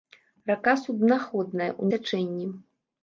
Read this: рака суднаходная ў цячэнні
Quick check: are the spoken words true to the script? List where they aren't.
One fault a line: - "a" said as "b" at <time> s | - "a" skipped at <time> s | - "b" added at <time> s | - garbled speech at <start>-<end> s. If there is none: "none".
none